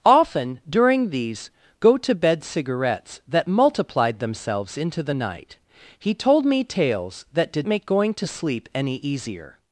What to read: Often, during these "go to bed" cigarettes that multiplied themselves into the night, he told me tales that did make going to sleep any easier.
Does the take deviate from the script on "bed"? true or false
false